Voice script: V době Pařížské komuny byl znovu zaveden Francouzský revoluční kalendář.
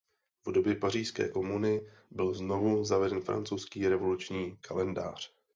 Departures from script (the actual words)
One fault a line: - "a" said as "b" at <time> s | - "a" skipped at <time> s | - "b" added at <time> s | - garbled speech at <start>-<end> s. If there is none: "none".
none